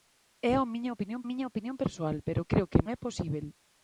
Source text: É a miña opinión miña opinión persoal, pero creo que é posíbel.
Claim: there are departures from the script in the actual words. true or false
false